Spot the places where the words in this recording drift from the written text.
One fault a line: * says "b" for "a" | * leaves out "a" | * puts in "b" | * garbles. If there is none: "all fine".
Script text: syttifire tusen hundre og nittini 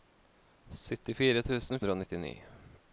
all fine